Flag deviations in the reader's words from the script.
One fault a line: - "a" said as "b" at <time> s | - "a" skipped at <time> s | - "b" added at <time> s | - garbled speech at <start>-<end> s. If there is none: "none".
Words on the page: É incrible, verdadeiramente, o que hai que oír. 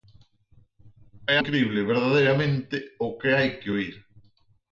none